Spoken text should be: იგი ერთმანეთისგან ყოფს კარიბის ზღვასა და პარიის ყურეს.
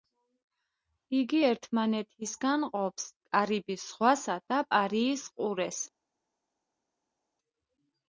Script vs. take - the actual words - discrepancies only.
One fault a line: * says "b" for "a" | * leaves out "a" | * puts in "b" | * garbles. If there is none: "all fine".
all fine